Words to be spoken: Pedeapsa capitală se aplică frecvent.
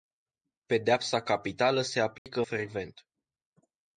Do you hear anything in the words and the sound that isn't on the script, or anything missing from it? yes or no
yes